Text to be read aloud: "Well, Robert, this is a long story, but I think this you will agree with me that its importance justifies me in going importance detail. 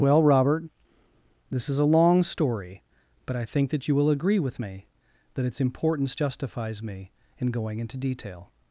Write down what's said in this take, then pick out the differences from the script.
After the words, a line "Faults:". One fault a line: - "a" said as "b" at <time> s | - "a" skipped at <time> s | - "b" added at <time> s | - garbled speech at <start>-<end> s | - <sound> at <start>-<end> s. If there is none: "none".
"Well, Robert, this is a long story, but I think that you will agree with me that its importance justifies me in going into detail.
Faults:
- "this" said as "that" at 3.7 s
- "importance" said as "into" at 7.8 s